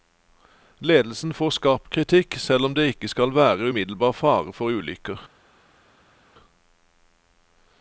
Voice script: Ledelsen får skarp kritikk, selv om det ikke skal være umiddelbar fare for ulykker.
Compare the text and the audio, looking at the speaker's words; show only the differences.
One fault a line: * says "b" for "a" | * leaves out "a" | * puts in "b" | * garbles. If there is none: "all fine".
all fine